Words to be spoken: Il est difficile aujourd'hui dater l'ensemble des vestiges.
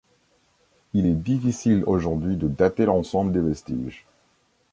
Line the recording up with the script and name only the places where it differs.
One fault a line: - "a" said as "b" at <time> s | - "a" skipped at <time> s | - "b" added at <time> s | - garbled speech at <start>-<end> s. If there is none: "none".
- "de" added at 2.3 s